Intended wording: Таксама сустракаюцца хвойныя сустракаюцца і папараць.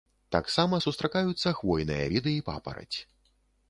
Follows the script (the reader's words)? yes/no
no